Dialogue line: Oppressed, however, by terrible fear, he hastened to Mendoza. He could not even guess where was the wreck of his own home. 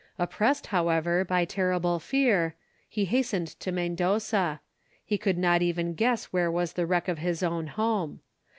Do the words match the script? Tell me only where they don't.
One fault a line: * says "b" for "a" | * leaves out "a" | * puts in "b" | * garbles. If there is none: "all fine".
all fine